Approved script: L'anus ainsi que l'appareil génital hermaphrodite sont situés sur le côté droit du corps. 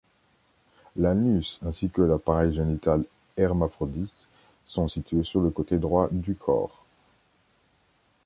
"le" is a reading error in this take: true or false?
false